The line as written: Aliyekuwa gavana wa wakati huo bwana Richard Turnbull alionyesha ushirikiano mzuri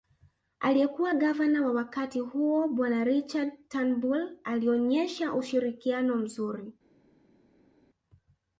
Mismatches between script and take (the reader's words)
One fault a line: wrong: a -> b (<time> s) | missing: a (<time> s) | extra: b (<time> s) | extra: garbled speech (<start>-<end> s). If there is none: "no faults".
no faults